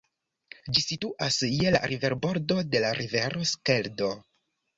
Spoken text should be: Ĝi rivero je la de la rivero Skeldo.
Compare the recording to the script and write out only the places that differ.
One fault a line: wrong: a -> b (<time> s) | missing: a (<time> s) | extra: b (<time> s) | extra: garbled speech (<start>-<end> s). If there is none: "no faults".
wrong: rivero -> situas (0.8 s)
extra: riverbordo (1.9 s)